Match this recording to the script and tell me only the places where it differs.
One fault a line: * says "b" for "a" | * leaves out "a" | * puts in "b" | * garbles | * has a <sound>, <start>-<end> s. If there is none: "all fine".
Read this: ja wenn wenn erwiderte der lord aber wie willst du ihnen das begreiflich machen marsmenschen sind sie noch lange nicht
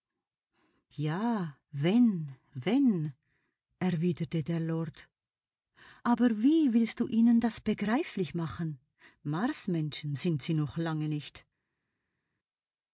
all fine